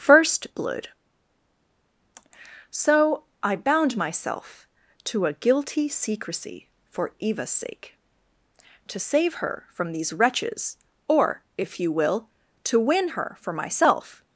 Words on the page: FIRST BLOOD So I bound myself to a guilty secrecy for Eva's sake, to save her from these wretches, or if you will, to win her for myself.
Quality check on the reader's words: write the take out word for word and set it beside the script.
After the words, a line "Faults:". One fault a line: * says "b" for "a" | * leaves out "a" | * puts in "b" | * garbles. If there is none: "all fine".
FIRST BLOOD So I bound myself to a guilty secrecy for Eva's sake, to save her from these wretches, or if you will, to win her for myself.
Faults:
all fine